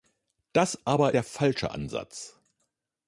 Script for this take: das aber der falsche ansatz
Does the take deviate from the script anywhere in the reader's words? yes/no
no